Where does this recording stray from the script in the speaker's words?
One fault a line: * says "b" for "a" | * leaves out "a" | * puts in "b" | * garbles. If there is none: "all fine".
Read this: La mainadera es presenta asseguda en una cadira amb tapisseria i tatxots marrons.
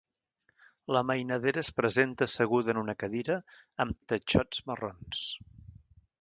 * leaves out "tapisseria"